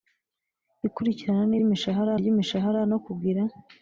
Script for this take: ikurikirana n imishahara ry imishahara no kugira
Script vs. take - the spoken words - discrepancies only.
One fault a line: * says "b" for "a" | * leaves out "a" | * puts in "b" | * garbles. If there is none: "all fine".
all fine